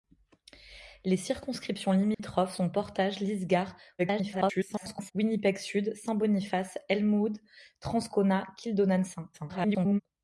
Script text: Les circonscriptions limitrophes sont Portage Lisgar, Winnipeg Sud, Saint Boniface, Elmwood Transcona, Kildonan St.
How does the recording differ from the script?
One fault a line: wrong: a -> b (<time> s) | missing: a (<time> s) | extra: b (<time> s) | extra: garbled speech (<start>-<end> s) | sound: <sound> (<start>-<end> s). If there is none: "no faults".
sound: dropout (2.1-2.2 s)
extra: garbled speech (4.0-5.1 s)
extra: garbled speech (9.3-10.0 s)